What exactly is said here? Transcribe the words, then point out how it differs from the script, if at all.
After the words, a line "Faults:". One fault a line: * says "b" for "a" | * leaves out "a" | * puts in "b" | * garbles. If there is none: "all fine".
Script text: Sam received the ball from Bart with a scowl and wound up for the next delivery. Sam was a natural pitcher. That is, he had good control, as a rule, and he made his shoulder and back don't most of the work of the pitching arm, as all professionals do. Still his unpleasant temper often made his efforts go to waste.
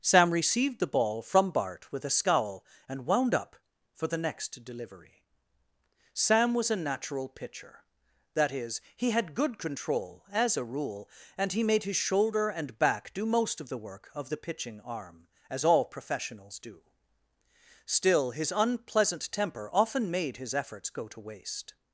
Sam received the ball from Bart with a scowl and wound up for the next delivery. Sam was a natural pitcher. That is, he had good control, as a rule, and he made his shoulder and back do most of the work of the pitching arm, as all professionals do. Still his unpleasant temper often made his efforts go to waste.
Faults:
* says "do" for "don't"